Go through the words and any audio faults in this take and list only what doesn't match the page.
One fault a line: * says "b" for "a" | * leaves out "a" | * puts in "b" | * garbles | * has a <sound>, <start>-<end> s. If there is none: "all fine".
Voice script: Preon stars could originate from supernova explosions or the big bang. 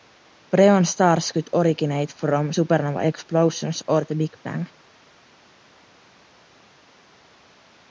all fine